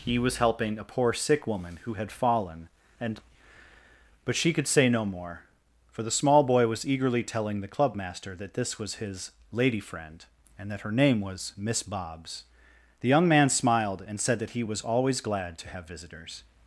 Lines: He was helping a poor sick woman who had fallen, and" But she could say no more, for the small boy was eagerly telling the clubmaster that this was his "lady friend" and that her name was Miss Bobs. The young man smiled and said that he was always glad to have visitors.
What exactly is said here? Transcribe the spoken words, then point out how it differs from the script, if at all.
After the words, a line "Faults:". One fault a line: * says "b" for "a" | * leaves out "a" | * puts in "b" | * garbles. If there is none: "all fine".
He was helping a poor sick woman who had fallen, and" But she could say no more, for the small boy was eagerly telling the clubmaster that this was his "lady friend" and that her name was Miss Bobs. The young man smiled and said that he was always glad to have visitors.
Faults:
all fine